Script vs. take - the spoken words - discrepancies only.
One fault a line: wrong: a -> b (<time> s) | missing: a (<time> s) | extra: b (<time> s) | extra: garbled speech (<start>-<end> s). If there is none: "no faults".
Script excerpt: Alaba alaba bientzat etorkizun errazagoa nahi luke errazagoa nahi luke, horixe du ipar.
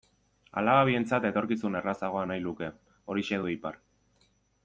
missing: alaba (0.8 s)
missing: errazagoa nahi luke (2.7 s)